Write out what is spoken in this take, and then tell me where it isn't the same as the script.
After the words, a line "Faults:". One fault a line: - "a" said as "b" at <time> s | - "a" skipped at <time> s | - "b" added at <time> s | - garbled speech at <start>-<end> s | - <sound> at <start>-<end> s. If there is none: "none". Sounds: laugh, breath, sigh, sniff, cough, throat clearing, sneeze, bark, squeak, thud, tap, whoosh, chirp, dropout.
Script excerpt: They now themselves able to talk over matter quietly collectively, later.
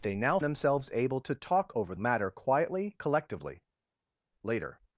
They now themselves able to talk over matter quietly collectively, later.
Faults:
none